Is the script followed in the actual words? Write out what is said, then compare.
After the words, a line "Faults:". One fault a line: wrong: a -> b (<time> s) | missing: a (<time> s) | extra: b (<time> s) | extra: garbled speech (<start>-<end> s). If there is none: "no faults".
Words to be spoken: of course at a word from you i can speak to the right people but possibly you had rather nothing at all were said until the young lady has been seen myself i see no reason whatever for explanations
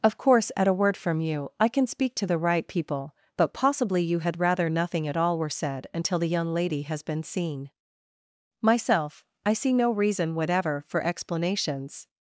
of course at a word from you i can speak to the right people but possibly you had rather nothing at all were said until the young lady has been seen myself i see no reason whatever for explanations
Faults:
no faults